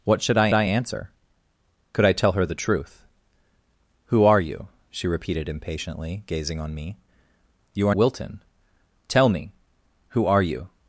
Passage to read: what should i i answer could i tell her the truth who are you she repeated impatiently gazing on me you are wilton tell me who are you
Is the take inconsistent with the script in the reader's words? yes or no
no